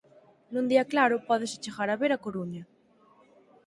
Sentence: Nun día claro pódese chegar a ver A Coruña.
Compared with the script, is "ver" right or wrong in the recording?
right